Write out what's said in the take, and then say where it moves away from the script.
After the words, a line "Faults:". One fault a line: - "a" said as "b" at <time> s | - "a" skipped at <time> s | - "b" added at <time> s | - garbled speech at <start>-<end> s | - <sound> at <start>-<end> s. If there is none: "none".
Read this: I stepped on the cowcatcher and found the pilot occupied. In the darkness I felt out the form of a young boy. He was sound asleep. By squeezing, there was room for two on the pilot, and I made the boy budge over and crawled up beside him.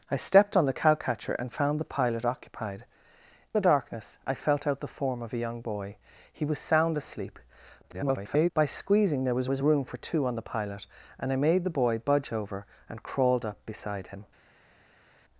I stepped on the cowcatcher and found the pilot occupied. The darkness I felt out the form of a young boy. He was sound asleep. [garbled] By squeezing, there was was room for two on the pilot, and I made the boy budge over and crawled up beside him.
Faults:
- "In" skipped at 2.9 s
- garbled speech at 7.8-8.5 s
- "was" added at 9.5 s